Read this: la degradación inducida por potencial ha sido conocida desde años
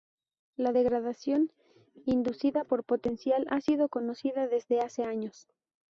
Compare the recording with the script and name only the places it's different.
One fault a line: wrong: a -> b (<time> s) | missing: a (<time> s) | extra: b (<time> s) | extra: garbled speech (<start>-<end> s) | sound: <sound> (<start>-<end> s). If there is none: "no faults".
extra: hace (4.8 s)